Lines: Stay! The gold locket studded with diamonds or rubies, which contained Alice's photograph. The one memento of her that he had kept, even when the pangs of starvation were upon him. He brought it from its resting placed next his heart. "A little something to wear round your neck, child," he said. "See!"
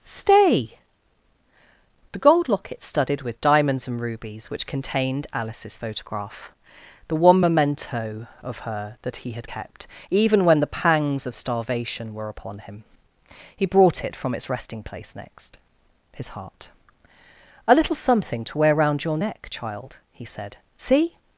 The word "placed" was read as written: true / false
false